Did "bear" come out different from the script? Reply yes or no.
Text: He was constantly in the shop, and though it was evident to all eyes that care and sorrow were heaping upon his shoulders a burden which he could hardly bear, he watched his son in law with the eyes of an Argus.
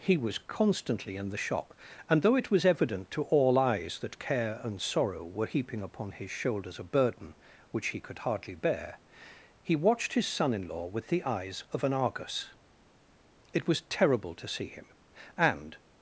no